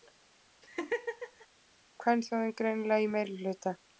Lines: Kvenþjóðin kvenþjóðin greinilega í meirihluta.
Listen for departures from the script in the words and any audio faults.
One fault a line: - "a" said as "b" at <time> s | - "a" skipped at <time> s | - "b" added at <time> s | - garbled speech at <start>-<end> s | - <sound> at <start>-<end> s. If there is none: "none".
- laugh at 0.6-1.5 s
- "kvenþjóðin" skipped at 2.5 s